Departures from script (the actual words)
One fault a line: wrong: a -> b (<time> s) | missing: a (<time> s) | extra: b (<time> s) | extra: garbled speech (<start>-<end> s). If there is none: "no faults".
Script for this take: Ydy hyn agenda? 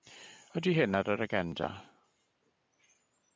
extra: ar yr (1.0 s)